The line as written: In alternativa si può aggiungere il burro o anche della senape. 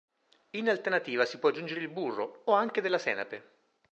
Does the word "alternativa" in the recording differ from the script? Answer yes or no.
no